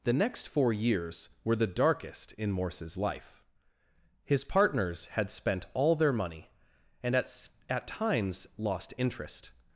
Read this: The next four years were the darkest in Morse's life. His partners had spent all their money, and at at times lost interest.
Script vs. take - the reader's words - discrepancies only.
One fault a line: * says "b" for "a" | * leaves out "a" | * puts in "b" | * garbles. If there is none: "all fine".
all fine